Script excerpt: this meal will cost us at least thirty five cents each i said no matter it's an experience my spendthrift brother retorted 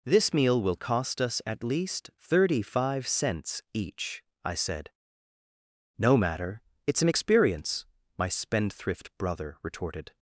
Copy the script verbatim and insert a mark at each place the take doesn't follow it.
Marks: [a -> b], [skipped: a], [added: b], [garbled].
this meal will cost us at least thirty five cents each i said no matter it's an experience my spendthrift brother retorted